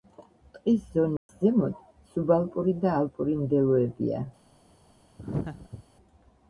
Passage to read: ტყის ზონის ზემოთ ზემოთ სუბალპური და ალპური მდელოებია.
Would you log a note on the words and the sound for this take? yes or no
yes